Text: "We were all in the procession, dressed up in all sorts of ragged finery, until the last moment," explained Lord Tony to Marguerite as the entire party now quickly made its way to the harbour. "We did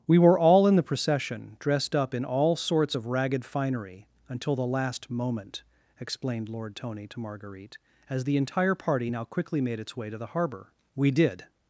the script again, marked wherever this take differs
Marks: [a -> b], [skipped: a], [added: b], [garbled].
"We were all in the procession, dressed up in all sorts of ragged finery, until the last moment," explained Lord Tony to Marguerite as the entire party now quickly made its way to the harbour. "We did